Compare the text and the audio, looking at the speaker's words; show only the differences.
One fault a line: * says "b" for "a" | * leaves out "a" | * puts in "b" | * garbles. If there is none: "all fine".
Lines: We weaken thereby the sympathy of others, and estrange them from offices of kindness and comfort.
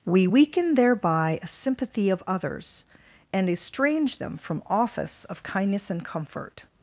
* says "a" for "the"
* says "office" for "offices"